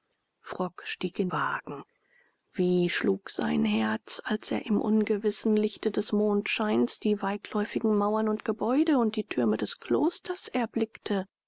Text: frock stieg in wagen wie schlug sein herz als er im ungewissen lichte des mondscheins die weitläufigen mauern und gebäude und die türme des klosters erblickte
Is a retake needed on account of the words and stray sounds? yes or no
no